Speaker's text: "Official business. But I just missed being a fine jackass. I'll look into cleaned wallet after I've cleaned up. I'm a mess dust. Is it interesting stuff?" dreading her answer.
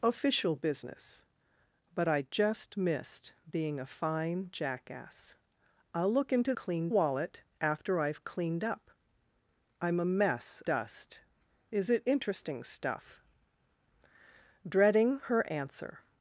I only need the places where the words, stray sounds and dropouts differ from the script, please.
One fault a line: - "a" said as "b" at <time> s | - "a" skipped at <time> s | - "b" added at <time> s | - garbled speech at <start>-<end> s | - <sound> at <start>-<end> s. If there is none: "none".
none